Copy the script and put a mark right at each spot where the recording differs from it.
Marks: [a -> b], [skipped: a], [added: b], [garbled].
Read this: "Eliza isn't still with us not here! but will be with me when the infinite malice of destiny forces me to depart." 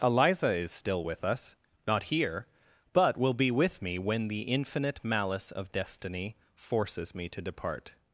"Eliza [isn't -> is] still with us not here! but will be with me when the infinite malice of destiny forces me to depart."